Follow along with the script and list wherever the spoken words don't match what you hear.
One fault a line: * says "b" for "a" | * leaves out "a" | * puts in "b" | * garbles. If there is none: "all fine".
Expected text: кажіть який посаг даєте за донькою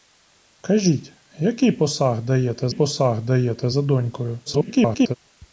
* puts in "посаг даєте"
* garbles